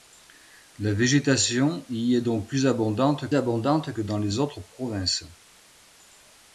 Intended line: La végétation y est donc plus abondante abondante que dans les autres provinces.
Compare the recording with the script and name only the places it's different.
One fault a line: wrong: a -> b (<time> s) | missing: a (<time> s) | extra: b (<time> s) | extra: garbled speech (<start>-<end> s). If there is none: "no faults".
no faults